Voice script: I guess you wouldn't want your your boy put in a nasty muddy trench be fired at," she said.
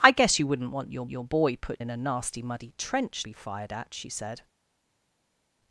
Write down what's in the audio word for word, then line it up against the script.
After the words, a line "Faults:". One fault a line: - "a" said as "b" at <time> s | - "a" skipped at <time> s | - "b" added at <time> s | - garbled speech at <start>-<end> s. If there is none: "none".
I guess you wouldn't want your your boy put in a nasty muddy trench be fired at," she said.
Faults:
none